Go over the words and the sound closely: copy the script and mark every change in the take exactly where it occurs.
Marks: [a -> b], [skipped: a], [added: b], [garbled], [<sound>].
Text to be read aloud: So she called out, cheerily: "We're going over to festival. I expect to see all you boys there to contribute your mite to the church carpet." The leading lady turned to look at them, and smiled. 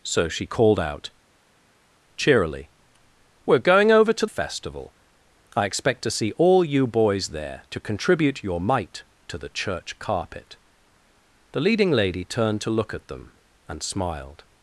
So she called out, cheerily: "We're going over to festival. I expect to see all you boys there to contribute your mite to the church carpet." The leading lady turned to look at them, and smiled.